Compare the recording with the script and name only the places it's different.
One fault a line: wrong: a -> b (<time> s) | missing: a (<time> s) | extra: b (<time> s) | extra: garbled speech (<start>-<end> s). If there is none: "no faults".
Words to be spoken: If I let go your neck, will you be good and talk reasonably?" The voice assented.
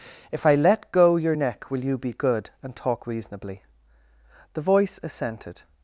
no faults